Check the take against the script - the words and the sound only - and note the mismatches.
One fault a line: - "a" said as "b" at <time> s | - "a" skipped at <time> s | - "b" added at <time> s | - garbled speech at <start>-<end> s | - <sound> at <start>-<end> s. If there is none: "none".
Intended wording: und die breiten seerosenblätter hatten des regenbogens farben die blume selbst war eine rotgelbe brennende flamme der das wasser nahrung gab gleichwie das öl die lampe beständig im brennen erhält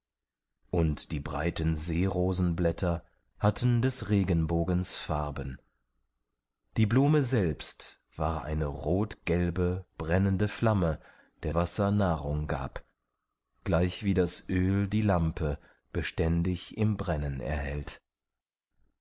- "das" skipped at 11.5 s